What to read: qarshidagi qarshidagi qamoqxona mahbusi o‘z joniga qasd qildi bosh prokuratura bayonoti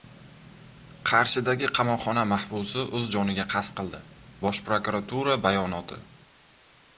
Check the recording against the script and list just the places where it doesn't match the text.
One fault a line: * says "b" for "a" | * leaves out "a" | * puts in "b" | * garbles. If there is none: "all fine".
* leaves out "qarshidagi"